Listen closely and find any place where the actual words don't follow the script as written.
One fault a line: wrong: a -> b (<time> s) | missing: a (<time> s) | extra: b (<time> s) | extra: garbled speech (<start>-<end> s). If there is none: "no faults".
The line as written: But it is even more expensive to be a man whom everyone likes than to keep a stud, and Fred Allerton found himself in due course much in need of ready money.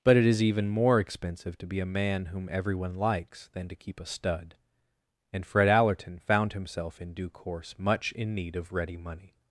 no faults